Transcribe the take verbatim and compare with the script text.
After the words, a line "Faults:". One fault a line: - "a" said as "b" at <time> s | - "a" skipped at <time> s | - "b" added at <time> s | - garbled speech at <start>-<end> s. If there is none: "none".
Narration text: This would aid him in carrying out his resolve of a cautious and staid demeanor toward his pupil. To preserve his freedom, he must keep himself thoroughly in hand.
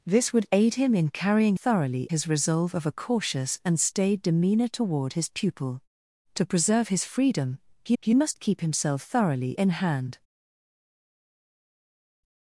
This would aid him in carrying thoroughly his resolve of a cautious and staid demeanor toward his pupil. To preserve his freedom, he he must keep himself thoroughly in hand.
Faults:
- "out" said as "thoroughly" at 1.5 s
- "he" added at 8.0 s